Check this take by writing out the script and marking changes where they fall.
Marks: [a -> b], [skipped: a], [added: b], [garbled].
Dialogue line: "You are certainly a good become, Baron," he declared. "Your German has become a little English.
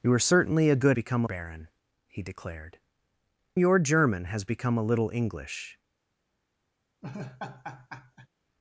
"You are certainly a good become, Baron," he declared. "Your German has become a little English.